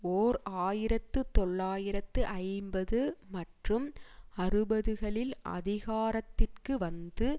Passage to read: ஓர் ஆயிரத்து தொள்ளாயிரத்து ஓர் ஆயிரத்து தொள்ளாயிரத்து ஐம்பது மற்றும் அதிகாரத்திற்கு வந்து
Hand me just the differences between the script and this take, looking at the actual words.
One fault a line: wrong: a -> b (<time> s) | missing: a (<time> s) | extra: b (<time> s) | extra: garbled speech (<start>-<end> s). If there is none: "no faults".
missing: ஓர் ஆயிரத்து தொள்ளாயிரத்து (2.2 s)
extra: அறுபதுகளில் (4.4 s)